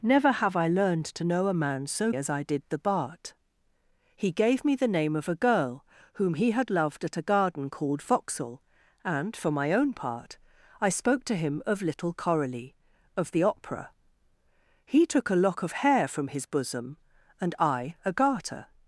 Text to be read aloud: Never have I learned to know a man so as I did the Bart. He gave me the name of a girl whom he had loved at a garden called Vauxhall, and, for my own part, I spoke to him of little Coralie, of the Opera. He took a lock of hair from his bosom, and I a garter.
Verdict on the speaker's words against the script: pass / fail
pass